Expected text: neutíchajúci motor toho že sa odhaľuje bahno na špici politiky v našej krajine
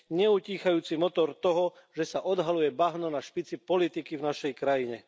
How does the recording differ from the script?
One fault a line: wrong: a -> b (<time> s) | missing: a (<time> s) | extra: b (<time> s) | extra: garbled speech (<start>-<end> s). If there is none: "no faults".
no faults